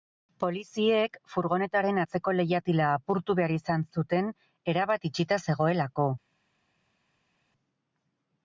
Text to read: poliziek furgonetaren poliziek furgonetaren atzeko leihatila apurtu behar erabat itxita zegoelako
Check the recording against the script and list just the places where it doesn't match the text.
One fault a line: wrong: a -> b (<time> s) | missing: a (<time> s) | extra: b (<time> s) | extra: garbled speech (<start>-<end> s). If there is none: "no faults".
missing: poliziek furgonetaren (2.0 s)
extra: izan zuten (3.6 s)